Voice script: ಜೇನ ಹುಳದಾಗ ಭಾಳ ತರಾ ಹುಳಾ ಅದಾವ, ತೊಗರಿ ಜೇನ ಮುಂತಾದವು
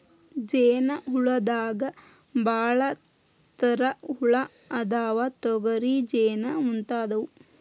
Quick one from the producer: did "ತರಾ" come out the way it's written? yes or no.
yes